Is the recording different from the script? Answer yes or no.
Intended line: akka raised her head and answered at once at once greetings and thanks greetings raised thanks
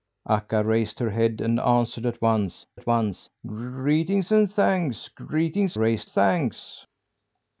no